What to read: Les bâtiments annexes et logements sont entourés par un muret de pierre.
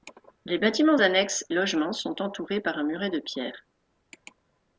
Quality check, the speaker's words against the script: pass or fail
fail